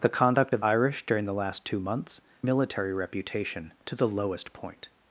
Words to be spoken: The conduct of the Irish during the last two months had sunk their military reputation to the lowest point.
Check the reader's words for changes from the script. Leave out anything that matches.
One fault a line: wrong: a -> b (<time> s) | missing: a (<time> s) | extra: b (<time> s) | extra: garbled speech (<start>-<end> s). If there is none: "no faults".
missing: the (0.6 s)
missing: had sunk their (2.2 s)